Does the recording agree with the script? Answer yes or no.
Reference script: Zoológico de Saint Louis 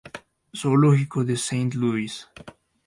yes